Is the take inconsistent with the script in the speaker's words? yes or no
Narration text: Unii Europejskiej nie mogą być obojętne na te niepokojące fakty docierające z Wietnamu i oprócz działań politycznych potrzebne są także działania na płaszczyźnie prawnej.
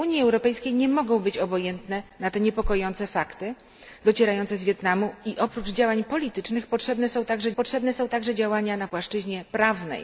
yes